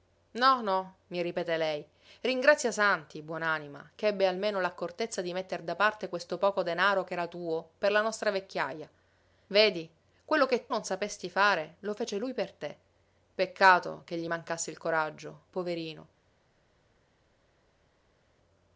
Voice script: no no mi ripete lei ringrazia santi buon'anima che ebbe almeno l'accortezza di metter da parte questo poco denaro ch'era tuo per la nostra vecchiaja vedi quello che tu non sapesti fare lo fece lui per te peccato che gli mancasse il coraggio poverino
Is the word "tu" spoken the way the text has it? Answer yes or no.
no